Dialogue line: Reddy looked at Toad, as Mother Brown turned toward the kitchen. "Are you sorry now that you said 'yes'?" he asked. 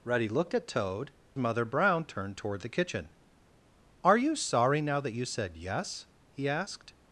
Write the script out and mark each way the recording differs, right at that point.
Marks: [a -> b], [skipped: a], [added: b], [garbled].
Reddy looked at Toad, [skipped: as] Mother Brown turned toward the kitchen. "Are you sorry now that you said 'yes'?" he asked.